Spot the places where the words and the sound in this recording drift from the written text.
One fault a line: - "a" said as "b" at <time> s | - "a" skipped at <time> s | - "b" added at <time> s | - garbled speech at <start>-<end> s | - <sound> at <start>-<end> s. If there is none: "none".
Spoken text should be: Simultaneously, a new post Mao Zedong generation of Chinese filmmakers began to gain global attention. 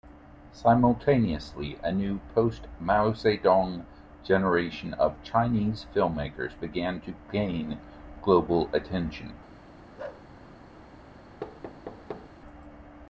- bark at 10.0-10.3 s
- thud at 11.4-12.3 s